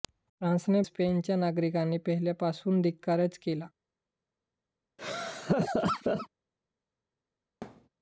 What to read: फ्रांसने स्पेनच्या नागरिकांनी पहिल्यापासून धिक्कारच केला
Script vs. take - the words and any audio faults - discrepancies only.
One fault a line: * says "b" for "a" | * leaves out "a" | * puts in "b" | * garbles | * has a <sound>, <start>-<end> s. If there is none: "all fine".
* has a laugh, 5.0-6.3 s
* has a thud, 7.6-7.9 s